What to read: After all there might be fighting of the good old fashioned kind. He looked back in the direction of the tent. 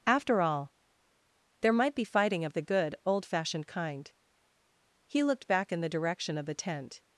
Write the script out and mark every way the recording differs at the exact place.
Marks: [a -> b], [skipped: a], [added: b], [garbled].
After all there might be fighting of the good old fashioned kind. He looked back in the direction of the tent.